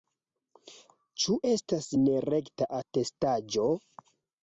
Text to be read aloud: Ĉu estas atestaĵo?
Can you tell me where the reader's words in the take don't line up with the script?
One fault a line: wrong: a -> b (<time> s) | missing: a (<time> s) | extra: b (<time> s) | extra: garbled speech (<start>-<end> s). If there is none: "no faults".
extra: nerekta (2.0 s)